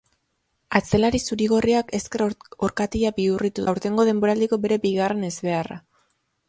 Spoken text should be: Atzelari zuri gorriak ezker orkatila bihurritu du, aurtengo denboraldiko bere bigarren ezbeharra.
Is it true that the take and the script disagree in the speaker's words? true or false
true